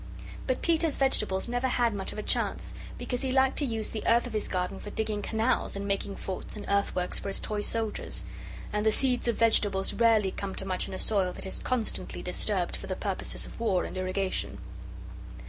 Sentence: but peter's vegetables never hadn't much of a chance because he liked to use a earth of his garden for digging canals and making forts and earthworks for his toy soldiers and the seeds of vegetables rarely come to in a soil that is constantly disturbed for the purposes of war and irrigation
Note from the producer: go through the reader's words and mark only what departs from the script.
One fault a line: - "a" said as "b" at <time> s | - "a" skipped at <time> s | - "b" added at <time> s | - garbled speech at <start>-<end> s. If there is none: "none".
- "hadn't" said as "had" at 1.7 s
- "a" said as "the" at 3.9 s
- "much" added at 10.6 s